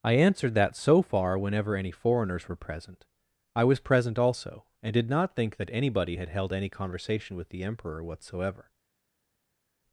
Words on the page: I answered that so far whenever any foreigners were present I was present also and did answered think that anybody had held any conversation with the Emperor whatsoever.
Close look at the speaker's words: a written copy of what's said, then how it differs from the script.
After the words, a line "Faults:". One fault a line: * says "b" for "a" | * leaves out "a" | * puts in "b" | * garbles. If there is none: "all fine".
I answered that so far whenever any foreigners were present I was present also and did not think that anybody had held any conversation with the Emperor whatsoever.
Faults:
* says "not" for "answered"